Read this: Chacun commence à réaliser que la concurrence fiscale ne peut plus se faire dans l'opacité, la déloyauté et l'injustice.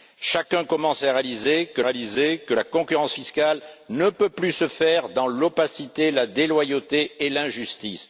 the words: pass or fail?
fail